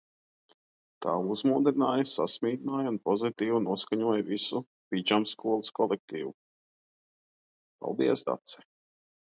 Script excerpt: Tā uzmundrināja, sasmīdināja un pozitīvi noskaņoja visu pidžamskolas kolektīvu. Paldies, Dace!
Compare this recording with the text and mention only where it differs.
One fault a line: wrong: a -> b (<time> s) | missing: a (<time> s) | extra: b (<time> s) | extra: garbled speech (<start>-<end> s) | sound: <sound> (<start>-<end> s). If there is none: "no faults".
no faults